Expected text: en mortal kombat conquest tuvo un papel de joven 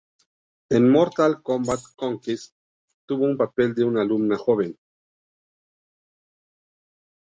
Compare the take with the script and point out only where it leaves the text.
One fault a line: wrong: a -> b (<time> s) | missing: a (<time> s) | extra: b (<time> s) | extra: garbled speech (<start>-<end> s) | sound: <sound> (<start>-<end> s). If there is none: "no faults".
extra: una alumna (3.8 s)